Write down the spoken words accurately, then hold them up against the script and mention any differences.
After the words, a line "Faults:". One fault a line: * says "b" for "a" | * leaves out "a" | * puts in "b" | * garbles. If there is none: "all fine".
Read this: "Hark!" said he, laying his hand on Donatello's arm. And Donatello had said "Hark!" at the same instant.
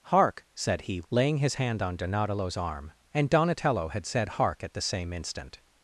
"Hark!" said he, laying his hand on Donatello's arm. And Donatello had said "Hark!" at the same instant.
Faults:
all fine